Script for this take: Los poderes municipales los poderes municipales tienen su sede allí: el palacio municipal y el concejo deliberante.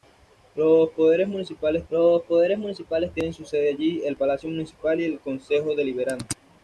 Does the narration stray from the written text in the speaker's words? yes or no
no